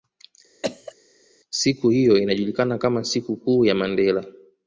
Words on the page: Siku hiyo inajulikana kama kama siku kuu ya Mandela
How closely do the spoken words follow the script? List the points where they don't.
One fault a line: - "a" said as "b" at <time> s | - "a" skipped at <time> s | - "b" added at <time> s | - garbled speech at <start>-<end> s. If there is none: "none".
- "kama" skipped at 3.0 s